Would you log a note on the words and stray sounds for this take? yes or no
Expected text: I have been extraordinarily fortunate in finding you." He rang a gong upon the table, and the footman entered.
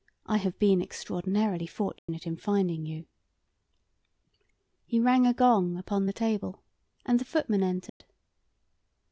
yes